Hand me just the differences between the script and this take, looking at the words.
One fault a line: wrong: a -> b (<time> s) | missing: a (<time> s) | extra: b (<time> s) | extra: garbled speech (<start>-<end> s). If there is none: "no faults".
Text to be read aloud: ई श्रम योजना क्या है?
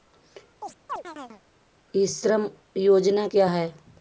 no faults